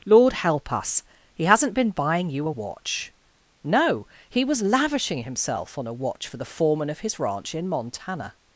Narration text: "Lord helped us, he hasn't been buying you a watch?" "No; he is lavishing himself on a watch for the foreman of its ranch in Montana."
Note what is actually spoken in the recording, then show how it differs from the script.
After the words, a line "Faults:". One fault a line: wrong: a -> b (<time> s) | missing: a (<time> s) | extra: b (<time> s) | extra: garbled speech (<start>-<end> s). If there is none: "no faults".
"Lord help us, he hasn't been buying you a watch?" "No; he was lavishing himself on a watch for the foreman of his ranch in Montana."
Faults:
wrong: helped -> help (0.3 s)
wrong: is -> was (4.4 s)
wrong: its -> his (7.0 s)